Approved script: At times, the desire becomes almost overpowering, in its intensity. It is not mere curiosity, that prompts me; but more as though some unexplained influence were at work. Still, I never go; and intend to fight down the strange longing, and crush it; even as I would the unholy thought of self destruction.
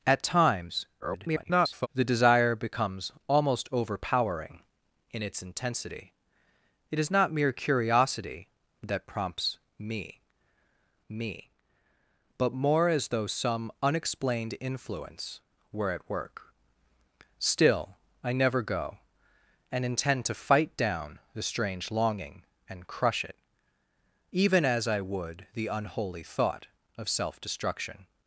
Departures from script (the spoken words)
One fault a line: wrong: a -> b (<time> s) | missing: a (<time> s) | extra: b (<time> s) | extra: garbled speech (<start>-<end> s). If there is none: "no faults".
extra: garbled speech (1.0-1.9 s)
extra: me (11.1 s)